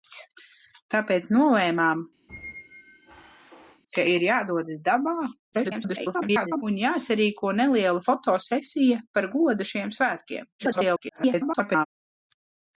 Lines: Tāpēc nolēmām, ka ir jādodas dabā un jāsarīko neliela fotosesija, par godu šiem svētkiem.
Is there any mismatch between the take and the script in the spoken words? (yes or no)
yes